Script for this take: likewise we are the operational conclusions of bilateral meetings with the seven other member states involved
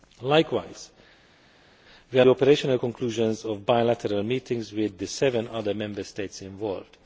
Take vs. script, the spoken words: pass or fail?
pass